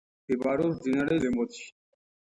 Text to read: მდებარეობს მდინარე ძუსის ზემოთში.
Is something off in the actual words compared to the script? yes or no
yes